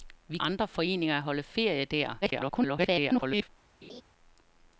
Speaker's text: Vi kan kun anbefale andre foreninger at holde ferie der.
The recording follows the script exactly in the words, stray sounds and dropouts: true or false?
false